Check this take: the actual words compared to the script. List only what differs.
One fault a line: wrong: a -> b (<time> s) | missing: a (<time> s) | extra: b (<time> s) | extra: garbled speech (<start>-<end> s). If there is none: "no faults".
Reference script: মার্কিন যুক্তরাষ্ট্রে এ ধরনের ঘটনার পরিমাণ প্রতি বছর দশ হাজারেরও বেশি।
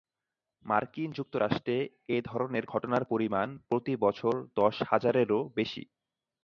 no faults